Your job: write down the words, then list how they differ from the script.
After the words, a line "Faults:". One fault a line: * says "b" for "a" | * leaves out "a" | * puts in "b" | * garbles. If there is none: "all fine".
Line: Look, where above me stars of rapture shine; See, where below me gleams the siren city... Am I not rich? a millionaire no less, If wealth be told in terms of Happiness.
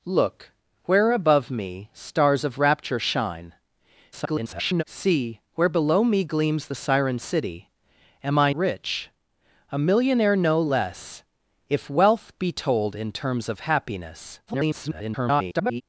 Look, where above me stars of rapture shine; [garbled] See, where below me gleams the siren city... Am I rich? a millionaire no less, If wealth be told in terms of Happiness. [garbled]
Faults:
* garbles
* leaves out "not"
* garbles